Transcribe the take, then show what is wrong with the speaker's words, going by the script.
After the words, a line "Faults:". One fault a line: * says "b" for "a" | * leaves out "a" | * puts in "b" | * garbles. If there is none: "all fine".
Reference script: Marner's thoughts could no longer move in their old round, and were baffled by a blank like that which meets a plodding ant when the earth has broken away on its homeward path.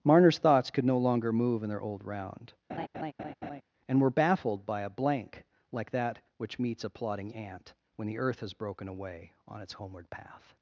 Marner's thoughts could no longer move in their old round, and were baffled by a blank like that which meets a plodding ant when the earth has broken away on its homeward path.
Faults:
all fine